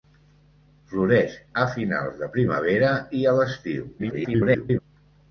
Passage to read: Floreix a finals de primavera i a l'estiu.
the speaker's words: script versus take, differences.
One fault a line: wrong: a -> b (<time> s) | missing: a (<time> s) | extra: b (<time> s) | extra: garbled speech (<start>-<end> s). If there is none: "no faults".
extra: garbled speech (4.0-4.8 s)